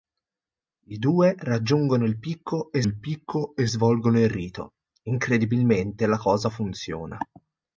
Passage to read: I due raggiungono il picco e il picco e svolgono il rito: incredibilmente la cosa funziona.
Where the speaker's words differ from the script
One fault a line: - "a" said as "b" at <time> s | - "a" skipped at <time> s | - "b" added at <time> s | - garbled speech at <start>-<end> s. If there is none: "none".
none